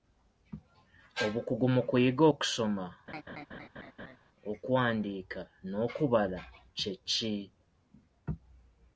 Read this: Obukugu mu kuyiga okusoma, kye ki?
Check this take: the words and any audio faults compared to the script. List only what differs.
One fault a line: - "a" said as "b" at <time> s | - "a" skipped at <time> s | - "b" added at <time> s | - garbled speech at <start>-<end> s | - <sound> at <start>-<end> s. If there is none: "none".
- laugh at 3.1-4.2 s
- "okuwandiika n'okubala" added at 4.5 s